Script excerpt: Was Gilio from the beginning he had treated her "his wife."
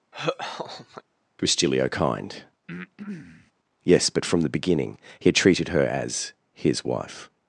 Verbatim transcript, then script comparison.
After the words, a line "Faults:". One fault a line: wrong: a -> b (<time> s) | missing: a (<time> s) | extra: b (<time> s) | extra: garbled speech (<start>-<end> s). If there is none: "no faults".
Was Gilio kind? Yes, but from the beginning he had treated her as "his wife."
Faults:
extra: kind Yes but (1.9 s)
extra: as (5.8 s)